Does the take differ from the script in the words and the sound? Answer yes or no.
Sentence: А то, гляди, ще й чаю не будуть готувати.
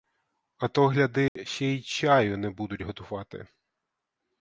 yes